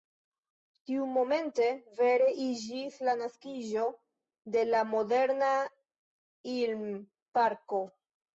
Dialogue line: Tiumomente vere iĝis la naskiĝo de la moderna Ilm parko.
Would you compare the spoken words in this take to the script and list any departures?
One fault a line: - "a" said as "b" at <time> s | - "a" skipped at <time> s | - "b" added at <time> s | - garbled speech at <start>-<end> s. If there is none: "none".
none